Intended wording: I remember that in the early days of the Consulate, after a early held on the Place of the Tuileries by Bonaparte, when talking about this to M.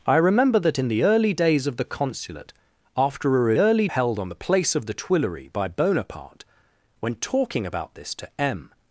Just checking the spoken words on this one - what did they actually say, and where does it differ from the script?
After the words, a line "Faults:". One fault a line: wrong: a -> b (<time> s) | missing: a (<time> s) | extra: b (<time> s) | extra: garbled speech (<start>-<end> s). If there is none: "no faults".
I remember that in the early days of the Consulate, after a early held on the Place of the Tuileries by Bonaparte, when talking about this to M.
Faults:
no faults